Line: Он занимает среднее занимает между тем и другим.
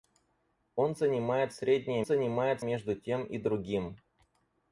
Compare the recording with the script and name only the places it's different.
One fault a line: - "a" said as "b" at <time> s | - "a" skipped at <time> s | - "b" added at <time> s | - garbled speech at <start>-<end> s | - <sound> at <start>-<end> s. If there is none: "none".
none